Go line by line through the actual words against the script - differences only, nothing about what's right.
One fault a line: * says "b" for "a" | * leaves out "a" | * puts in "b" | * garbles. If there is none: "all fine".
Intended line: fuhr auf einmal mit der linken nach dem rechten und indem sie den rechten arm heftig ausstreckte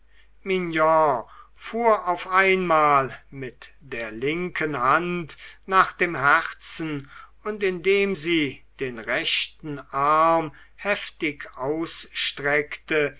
* puts in "hand"
* says "herzen" for "rechten"